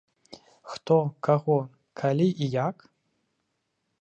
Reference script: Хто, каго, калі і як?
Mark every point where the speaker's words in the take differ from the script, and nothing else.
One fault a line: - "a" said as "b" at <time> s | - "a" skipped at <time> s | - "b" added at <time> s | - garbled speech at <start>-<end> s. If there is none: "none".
none